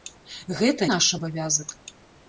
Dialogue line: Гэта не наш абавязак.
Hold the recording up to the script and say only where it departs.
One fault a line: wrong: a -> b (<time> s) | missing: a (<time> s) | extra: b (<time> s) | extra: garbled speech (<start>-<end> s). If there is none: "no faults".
missing: не (0.9 s)